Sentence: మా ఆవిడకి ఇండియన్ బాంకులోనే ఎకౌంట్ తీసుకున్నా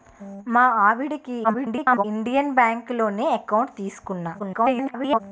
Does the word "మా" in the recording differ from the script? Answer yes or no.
no